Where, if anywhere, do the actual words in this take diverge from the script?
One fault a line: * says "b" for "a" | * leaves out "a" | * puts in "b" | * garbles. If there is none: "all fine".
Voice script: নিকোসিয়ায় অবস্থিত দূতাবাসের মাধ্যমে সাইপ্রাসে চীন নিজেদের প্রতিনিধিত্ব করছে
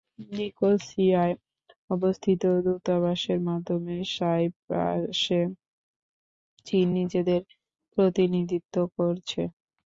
all fine